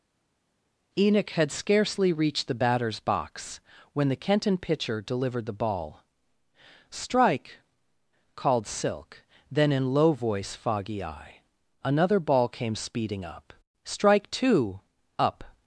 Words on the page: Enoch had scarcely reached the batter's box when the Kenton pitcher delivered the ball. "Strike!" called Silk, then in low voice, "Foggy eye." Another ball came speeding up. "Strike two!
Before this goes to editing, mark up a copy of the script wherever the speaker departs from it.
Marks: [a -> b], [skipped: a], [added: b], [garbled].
Enoch had scarcely reached the batter's box when the Kenton pitcher delivered the ball. "Strike!" called Silk, then in low voice, "Foggy eye." Another ball came speeding up. "Strike two! [added: up]